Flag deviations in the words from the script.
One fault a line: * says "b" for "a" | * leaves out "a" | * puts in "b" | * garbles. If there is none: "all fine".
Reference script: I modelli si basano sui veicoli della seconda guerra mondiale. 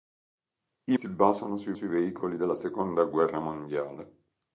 * leaves out "modelli"
* puts in "sui"